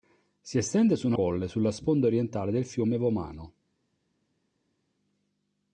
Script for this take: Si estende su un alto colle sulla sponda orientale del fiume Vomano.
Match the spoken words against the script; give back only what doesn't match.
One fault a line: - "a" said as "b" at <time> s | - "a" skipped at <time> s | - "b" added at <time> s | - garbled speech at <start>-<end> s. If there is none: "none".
- "alto" skipped at 1.1 s